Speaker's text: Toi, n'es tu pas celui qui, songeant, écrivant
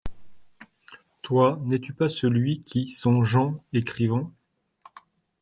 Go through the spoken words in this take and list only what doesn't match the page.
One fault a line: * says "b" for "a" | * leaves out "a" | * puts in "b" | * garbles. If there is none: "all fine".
all fine